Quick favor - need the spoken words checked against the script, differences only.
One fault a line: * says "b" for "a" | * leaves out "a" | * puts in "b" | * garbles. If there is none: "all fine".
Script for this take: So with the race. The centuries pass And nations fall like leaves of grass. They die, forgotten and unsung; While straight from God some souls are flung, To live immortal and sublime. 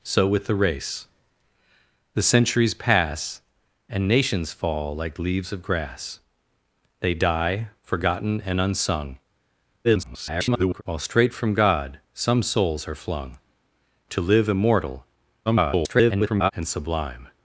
* garbles
* garbles